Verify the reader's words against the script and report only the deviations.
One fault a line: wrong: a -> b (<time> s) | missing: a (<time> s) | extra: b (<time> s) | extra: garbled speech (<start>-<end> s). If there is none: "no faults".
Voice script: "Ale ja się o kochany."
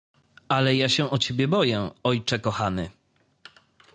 extra: ciebie boję ojcze (1.2 s)